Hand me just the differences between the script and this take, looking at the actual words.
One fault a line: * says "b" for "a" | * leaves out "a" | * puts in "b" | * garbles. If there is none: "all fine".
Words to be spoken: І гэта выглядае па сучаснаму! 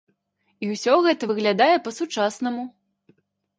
* puts in "ўсё"